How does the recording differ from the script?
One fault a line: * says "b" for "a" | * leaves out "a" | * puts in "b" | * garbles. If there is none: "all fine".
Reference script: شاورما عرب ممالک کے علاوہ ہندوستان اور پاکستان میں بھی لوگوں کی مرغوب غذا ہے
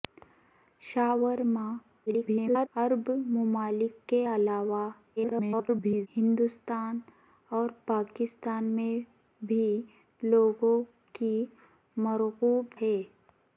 * garbles
* garbles
* leaves out "غذا"